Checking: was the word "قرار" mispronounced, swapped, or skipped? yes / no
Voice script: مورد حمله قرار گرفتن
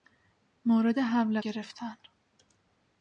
yes